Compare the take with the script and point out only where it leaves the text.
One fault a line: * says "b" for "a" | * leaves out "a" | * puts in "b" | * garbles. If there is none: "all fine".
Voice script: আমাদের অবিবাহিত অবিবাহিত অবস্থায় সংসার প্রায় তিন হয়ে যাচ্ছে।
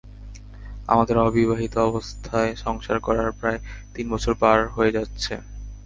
* leaves out "অবিবাহিত"
* puts in "করার"
* puts in "বছর পার"